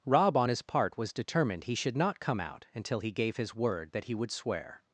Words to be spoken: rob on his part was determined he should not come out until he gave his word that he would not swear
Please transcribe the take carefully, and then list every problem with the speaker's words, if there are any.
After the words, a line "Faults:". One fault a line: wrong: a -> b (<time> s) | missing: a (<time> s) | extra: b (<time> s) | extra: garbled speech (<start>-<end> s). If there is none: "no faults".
rob on his part was determined he should not come out until he gave his word that he would swear
Faults:
missing: not (4.3 s)